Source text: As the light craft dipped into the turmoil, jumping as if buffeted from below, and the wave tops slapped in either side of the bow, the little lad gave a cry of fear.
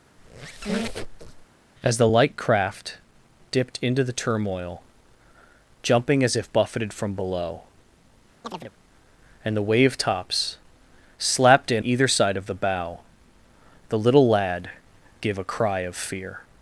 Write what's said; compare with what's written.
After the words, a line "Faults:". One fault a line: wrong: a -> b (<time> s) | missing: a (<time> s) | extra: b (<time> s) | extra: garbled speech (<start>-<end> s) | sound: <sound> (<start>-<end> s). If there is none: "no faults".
As the light craft dipped into the turmoil, jumping as if buffeted from below, and the wave tops slapped in either side of the bow, the little lad gave a cry of fear.
Faults:
sound: squeak (0.2-1.5 s)
sound: chirp (8.4-8.7 s)